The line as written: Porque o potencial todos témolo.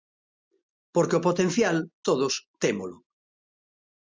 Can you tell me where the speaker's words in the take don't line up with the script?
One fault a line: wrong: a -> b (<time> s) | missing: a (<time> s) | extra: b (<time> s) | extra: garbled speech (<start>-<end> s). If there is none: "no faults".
no faults